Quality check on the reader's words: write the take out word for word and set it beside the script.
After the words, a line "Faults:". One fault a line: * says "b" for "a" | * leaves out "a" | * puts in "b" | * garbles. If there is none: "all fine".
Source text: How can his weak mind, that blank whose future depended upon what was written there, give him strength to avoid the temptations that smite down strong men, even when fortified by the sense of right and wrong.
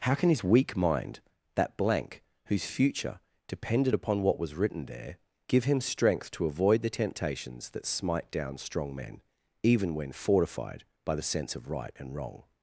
How can his weak mind, that blank whose future depended upon what was written there, give him strength to avoid the temptations that smite down strong men, even when fortified by the sense of right and wrong.
Faults:
all fine